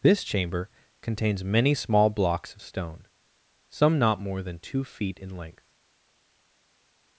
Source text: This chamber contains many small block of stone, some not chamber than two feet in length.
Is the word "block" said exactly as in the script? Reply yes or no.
no